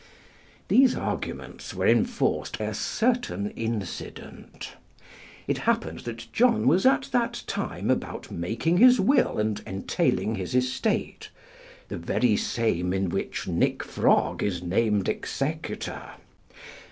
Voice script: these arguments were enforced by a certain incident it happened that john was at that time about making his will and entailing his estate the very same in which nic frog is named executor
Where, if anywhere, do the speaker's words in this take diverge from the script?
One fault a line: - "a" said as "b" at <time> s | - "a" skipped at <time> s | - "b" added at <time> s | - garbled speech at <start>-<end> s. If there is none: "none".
- "by" skipped at 2.6 s